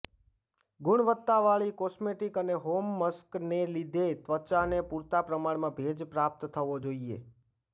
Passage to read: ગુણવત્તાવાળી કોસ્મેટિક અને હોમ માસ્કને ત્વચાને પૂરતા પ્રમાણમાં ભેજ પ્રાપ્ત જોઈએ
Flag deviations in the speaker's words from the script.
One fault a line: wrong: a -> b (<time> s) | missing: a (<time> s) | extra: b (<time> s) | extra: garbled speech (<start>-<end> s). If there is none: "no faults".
extra: લીધે (3.8 s)
extra: થવો (6.5 s)